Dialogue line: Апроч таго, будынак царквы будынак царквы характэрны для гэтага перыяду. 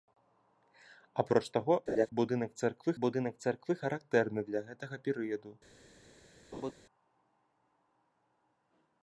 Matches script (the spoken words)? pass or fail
pass